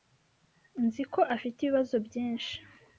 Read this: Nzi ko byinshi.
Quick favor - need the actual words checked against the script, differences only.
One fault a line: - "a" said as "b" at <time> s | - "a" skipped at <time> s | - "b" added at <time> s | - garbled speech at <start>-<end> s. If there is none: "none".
- "afite ibibazo" added at 1.4 s